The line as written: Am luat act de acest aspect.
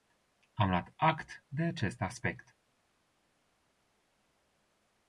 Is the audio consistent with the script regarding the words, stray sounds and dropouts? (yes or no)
yes